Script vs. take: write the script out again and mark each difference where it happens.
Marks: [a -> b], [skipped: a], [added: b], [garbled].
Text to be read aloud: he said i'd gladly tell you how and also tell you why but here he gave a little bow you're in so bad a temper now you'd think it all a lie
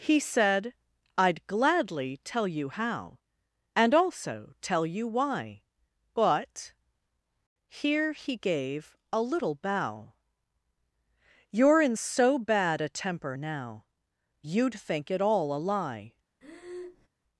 he said i'd gladly tell you how and also tell you why but here he gave a little bow you're in so bad a temper now you'd think it all a lie